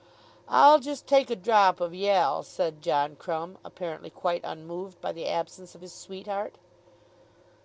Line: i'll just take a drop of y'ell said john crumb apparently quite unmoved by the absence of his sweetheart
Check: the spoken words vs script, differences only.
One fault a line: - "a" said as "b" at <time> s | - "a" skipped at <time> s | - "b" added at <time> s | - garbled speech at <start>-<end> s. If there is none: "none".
none